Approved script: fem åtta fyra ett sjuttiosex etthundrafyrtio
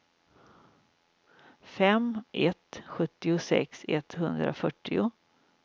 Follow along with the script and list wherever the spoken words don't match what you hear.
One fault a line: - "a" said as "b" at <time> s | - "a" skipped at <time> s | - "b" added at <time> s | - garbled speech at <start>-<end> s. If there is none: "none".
- "åtta fyra" skipped at 2.2 s